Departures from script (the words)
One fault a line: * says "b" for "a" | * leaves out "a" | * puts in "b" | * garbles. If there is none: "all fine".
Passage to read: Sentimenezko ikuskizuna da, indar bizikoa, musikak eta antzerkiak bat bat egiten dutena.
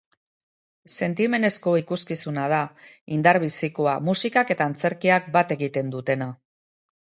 * leaves out "bat"